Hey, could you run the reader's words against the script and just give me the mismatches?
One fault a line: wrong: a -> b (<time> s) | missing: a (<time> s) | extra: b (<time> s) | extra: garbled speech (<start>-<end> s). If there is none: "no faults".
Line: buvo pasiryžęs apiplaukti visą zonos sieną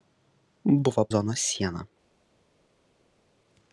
missing: pasiryžęs apiplaukti visą (1.0 s)